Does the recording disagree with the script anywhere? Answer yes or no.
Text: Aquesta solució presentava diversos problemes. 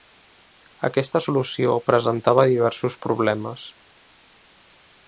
no